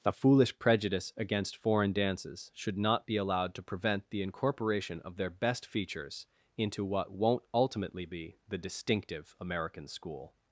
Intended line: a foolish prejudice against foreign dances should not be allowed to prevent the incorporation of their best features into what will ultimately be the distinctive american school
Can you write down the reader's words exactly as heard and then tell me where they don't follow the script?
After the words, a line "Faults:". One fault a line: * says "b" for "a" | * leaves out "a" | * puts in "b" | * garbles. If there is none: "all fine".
a foolish prejudice against foreign dances should not be allowed to prevent the incorporation of their best features into what won't ultimately be the distinctive american school
Faults:
* says "won't" for "will"